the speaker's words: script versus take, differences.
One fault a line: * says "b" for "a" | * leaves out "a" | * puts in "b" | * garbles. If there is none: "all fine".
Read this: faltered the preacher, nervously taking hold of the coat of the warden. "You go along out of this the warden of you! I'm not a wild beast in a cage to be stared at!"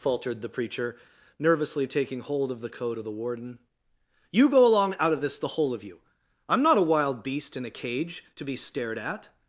* says "whole" for "warden"